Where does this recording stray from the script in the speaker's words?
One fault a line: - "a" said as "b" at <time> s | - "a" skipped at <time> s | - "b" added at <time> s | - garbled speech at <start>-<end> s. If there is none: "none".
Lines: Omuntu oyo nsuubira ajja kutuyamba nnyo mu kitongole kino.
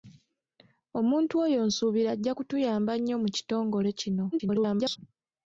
- garbled speech at 4.3-5.0 s